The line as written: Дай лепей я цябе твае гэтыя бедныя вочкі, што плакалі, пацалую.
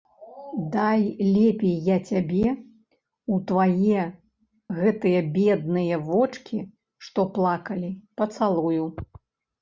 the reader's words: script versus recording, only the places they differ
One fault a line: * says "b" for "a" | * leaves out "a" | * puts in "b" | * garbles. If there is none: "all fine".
* puts in "ў"